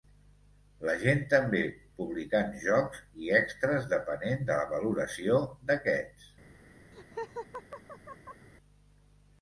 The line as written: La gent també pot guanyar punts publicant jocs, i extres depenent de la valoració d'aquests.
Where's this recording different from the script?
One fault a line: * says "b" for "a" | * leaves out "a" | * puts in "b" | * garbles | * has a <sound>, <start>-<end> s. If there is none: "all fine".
* leaves out "pot guanyar punts"
* has a laugh, 6.9-8.5 s